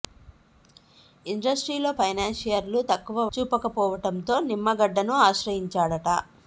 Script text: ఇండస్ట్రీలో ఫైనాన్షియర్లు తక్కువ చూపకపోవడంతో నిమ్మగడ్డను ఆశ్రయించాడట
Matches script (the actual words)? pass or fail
pass